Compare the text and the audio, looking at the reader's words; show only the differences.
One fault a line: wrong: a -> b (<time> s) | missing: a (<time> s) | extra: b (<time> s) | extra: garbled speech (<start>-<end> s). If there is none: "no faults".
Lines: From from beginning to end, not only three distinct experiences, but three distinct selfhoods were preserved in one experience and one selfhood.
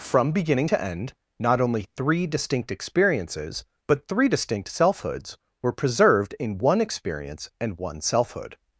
missing: from (0.3 s)